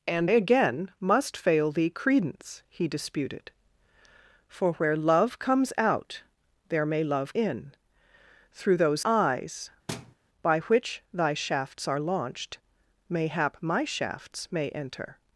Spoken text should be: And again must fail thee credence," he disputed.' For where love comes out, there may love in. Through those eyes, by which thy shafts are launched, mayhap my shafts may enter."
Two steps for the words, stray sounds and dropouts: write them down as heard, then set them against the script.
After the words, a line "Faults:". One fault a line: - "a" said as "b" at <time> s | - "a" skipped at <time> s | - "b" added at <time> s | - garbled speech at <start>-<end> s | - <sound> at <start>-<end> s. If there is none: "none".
And again must fail thee credence," he disputed.' For where love comes out, there may love in. Through those eyes, by which thy shafts are launched, mayhap my shafts may enter."
Faults:
- thud at 9.9-10.2 s